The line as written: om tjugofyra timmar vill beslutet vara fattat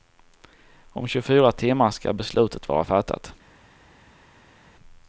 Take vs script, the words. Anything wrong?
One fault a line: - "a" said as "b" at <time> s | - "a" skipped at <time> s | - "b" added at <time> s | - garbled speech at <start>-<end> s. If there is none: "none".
- "vill" said as "ska" at 1.9 s